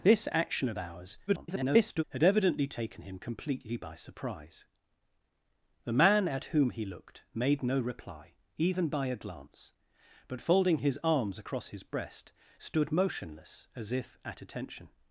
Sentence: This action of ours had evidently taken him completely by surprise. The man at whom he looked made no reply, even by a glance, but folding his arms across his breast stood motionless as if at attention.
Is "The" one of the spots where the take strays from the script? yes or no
no